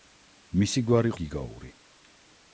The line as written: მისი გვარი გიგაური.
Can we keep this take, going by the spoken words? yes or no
yes